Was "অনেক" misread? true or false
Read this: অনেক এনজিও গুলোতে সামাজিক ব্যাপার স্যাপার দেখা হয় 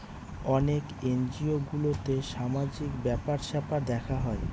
false